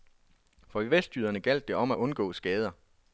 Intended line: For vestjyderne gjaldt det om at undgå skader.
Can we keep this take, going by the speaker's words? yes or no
yes